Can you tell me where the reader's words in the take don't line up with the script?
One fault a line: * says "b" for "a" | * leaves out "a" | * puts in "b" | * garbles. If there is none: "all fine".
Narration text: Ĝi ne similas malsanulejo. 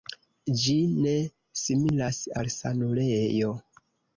all fine